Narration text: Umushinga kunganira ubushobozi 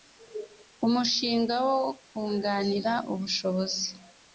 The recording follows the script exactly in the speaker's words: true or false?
false